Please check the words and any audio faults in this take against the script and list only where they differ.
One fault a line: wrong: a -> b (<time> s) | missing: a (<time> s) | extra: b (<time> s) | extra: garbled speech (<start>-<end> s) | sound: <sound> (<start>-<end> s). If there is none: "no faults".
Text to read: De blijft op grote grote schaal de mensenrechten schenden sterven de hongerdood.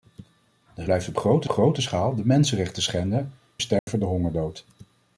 sound: dropout (3.8-3.9 s)